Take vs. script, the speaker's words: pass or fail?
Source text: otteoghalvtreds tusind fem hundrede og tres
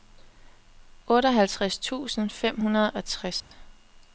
pass